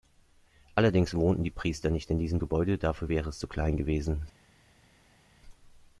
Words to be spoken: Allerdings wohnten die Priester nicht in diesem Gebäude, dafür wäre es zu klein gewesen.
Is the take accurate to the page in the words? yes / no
yes